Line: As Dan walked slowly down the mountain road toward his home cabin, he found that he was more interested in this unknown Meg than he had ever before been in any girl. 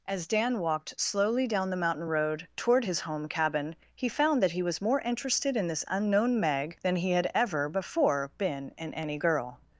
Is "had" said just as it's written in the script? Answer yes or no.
yes